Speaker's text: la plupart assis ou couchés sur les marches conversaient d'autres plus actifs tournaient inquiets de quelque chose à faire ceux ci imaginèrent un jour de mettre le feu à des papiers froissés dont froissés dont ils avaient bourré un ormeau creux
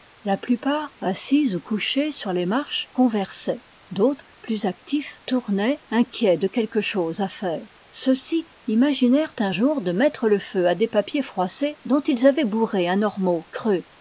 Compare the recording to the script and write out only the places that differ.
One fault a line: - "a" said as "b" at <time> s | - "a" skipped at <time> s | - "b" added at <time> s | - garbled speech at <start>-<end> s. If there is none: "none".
- "froissés dont" skipped at 12.0 s